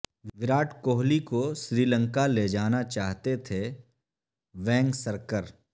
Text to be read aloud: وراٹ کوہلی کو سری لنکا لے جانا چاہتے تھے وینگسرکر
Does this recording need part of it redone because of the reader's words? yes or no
no